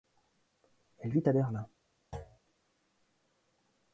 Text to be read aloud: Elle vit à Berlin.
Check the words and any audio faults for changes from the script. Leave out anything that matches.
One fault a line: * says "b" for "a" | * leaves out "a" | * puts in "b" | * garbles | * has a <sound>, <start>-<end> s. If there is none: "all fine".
* has a thud, 2.1-2.4 s